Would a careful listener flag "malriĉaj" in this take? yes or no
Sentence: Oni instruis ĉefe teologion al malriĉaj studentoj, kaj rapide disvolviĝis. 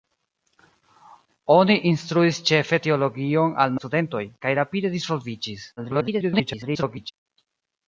yes